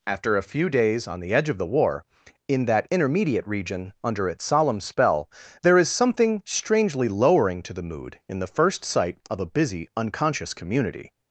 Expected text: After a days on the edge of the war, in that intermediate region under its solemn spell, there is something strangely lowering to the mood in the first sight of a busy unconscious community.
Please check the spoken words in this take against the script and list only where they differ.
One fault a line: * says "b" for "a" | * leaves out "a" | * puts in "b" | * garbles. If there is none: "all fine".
* puts in "few"